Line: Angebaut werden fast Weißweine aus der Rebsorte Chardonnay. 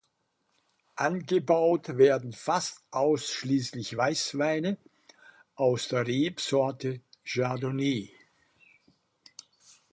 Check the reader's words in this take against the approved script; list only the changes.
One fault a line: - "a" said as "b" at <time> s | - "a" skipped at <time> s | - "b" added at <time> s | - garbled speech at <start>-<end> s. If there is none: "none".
- "ausschließlich" added at 2.9 s